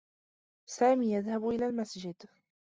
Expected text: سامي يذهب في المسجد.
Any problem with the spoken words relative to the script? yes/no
yes